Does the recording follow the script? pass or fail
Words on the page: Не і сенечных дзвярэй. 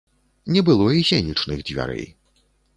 fail